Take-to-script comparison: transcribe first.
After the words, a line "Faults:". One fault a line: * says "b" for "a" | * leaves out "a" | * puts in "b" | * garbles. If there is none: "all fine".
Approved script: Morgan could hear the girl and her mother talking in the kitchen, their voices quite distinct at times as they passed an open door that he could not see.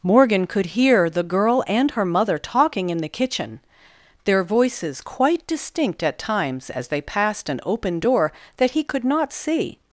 Morgan could hear the girl and her mother talking in the kitchen, their voices quite distinct at times as they passed an open door that he could not see.
Faults:
all fine